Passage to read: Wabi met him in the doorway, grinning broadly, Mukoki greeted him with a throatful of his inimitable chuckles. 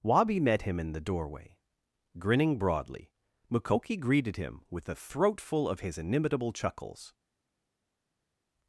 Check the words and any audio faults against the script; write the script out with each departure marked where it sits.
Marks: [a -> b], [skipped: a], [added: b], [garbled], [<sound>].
Wabi met him in the doorway, grinning broadly, Mukoki greeted him with a throatful of his inimitable chuckles.